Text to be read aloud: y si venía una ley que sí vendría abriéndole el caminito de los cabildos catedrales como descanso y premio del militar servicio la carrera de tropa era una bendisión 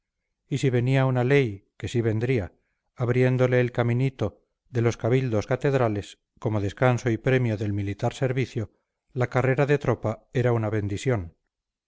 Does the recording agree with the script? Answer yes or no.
yes